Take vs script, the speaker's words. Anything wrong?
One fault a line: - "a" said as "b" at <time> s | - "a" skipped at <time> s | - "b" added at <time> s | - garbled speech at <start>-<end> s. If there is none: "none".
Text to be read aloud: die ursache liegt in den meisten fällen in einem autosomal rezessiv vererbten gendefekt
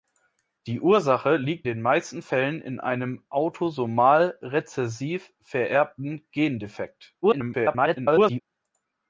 - "in" skipped at 1.7 s
- garbled speech at 7.2-8.4 s